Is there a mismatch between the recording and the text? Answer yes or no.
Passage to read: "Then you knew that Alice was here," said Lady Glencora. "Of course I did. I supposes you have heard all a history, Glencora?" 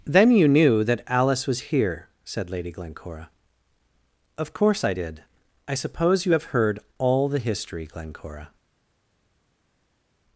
yes